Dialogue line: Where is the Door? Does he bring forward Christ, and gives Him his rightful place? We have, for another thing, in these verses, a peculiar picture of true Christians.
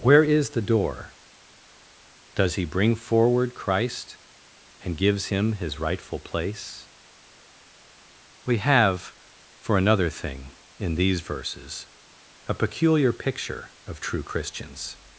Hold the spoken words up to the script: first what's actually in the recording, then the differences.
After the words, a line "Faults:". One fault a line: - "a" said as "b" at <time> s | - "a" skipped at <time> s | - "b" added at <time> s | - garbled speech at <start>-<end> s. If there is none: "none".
Where is the Door? Does he bring forward Christ, and gives Him his rightful place? We have, for another thing, in these verses, a peculiar picture of true Christians.
Faults:
none